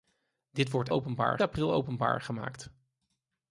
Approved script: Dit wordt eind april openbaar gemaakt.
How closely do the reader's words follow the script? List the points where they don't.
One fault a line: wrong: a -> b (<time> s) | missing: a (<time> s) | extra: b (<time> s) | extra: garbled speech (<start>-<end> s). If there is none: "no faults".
wrong: eind -> openbaar (0.9 s)